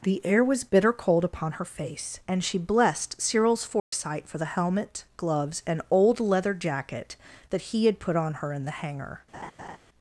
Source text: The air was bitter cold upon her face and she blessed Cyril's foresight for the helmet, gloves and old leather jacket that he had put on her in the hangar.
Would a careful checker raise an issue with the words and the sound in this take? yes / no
yes